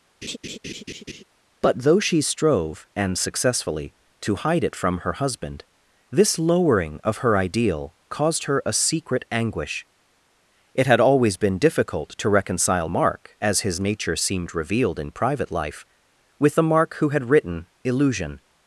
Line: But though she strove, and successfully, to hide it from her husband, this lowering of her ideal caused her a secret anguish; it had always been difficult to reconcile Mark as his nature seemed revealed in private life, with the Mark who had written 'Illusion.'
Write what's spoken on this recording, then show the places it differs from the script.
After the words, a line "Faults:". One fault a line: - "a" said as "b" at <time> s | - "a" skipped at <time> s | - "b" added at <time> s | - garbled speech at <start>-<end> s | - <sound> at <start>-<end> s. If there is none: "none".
But though she strove, and successfully, to hide it from her husband, this lowering of her ideal caused her a secret anguish; it had always been difficult to reconcile Mark as his nature seemed revealed in private life, with the Mark who had written 'Illusion.'
Faults:
- laugh at 0.2-1.2 s